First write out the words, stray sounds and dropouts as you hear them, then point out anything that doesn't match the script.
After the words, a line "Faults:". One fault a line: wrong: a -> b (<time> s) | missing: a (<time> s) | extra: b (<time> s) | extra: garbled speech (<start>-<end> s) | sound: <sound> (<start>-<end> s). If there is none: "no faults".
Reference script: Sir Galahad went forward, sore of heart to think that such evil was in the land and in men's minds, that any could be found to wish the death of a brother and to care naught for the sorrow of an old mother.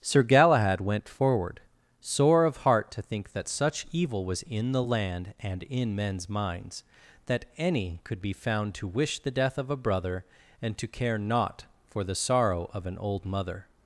Sir Galahad went forward, sore of heart to think that such evil was in the land and in men's minds, that any could be found to wish the death of a brother and to care naught for the sorrow of an old mother.
Faults:
no faults